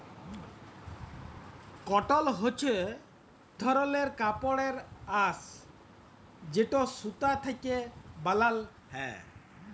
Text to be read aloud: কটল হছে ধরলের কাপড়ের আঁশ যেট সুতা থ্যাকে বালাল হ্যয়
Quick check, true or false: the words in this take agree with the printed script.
true